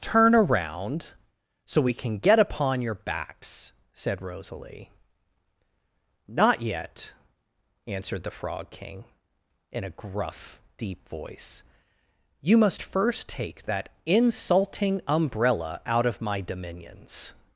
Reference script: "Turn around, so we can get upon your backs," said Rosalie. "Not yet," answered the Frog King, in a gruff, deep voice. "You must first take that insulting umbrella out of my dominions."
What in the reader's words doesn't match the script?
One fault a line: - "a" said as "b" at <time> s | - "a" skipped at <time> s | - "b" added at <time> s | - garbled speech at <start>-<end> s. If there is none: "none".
none